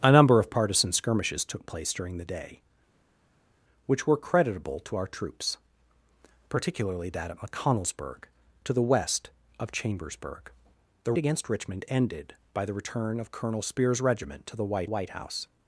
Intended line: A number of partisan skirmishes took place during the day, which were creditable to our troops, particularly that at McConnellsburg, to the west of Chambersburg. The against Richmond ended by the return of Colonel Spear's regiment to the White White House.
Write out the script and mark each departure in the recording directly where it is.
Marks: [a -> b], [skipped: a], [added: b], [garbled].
A number of partisan skirmishes took place during the day, which were creditable to our troops, particularly that at McConnellsburg, to the west of Chambersburg. The against Richmond ended by the return of Colonel Spear's regiment to the White White House.